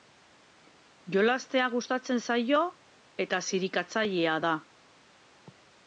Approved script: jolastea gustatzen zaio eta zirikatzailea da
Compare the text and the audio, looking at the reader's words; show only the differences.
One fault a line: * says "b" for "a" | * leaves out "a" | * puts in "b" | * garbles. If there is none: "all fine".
all fine